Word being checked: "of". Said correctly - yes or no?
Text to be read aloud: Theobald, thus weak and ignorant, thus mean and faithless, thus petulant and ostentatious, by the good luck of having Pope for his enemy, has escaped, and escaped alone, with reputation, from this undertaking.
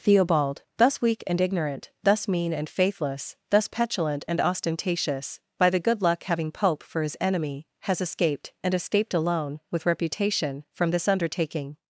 no